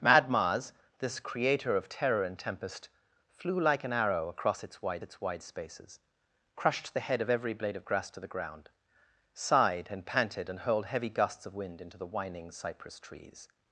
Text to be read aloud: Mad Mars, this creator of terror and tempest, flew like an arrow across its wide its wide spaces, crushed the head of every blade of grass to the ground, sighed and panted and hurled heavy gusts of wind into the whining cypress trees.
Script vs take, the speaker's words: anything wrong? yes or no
no